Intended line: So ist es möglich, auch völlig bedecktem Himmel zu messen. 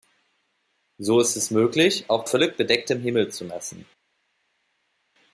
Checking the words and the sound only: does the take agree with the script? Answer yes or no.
yes